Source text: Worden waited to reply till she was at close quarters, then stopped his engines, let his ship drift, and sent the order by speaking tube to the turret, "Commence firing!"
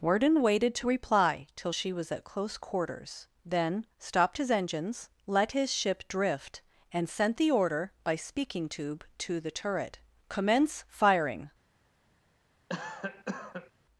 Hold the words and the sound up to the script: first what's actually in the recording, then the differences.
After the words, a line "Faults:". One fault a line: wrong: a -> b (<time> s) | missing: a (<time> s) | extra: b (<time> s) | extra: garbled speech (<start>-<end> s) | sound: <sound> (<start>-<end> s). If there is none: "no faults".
Worden waited to reply till she was at close quarters, then stopped his engines, let his ship drift, and sent the order by speaking tube to the turret, "Commence firing!"
Faults:
sound: cough (12.7-13.7 s)